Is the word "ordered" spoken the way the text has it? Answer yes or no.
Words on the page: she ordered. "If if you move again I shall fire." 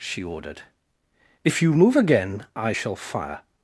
yes